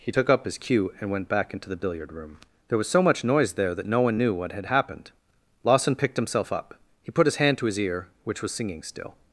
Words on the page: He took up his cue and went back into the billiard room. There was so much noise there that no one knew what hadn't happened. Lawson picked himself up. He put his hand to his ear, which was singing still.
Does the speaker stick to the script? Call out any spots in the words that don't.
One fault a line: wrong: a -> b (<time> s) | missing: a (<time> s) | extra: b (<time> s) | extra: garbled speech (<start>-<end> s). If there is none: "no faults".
wrong: hadn't -> had (4.5 s)